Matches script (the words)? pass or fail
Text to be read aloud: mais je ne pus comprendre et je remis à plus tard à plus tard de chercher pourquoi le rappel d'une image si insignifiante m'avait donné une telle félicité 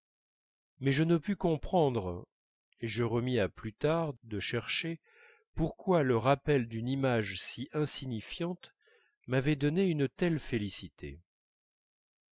fail